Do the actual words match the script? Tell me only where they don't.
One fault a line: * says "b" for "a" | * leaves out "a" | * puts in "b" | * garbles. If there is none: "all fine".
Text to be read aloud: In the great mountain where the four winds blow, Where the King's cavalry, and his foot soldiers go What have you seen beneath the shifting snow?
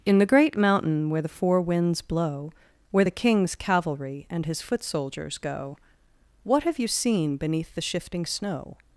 all fine